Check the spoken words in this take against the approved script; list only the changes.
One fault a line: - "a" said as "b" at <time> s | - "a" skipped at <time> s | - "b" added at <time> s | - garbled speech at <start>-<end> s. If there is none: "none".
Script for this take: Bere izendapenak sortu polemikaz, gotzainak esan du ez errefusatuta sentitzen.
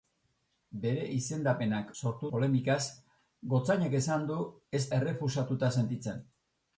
none